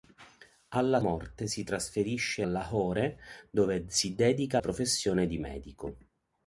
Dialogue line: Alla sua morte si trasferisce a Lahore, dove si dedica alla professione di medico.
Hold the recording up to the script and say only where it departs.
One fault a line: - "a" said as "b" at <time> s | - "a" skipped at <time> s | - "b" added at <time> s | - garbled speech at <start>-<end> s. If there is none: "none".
- "sua" skipped at 1.0 s
- "a" skipped at 2.5 s
- "alla" skipped at 4.6 s